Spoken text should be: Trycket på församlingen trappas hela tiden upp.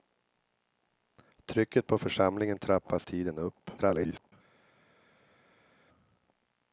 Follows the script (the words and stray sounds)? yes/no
no